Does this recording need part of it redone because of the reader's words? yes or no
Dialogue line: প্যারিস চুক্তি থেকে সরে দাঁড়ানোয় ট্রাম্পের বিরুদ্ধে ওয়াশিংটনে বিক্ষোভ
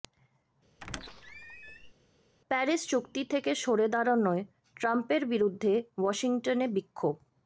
no